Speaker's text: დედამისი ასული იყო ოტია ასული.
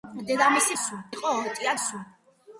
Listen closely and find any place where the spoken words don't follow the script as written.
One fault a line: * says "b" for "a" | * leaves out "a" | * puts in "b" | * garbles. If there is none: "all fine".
all fine